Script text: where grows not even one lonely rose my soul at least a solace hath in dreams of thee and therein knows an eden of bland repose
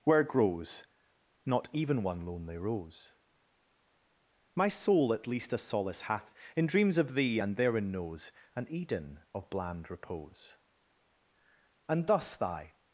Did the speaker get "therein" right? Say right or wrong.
right